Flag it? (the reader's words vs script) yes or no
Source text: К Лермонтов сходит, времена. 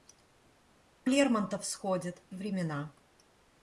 no